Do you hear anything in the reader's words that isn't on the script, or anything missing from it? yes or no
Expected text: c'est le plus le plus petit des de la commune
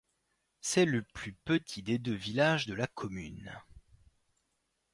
yes